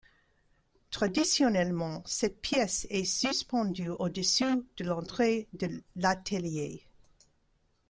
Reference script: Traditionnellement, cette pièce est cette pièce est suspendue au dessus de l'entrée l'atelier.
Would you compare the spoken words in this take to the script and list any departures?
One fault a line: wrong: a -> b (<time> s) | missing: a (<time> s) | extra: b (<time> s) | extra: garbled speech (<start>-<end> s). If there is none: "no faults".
missing: cette pièce est (3.0 s)
extra: de (5.5 s)